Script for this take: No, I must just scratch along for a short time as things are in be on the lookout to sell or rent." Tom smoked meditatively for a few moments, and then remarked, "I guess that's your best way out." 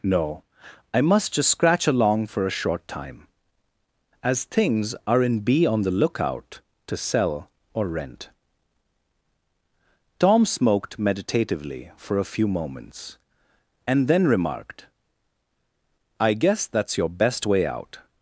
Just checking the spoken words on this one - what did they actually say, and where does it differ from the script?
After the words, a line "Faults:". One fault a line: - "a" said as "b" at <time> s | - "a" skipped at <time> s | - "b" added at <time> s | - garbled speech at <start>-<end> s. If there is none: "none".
No, I must just scratch along for a short time as things are in be on the lookout to sell or rent." Tom smoked meditatively for a few moments, and then remarked, "I guess that's your best way out."
Faults:
none